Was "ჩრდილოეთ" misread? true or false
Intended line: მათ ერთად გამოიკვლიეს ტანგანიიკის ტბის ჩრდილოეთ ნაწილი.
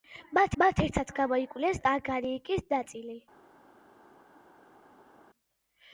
true